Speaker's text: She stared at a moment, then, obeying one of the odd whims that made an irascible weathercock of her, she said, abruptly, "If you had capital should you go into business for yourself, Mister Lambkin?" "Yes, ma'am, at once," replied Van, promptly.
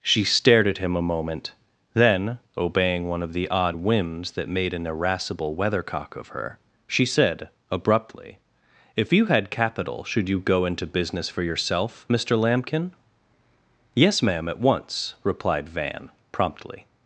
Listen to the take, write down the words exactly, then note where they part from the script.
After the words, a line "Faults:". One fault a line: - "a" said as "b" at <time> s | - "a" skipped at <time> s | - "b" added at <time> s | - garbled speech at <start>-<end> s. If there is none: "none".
She stared at him a moment, then, obeying one of the odd whims that made an irascible weathercock of her, she said, abruptly, "If you had capital should you go into business for yourself, Mister Lambkin?" "Yes, ma'am, at once," replied Van, promptly.
Faults:
- "him" added at 0.8 s